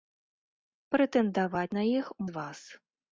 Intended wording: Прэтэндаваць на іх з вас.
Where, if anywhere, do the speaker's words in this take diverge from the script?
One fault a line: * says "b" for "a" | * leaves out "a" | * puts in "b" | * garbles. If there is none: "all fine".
all fine